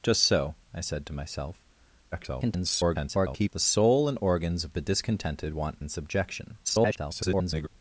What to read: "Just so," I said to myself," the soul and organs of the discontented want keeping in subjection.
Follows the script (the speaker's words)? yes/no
no